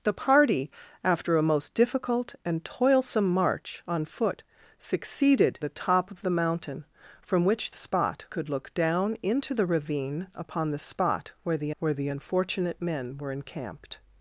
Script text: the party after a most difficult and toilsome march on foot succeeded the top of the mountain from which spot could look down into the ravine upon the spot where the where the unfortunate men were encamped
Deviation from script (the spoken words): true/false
false